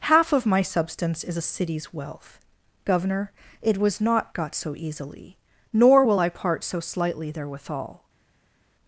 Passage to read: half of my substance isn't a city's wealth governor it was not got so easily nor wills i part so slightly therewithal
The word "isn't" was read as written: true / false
false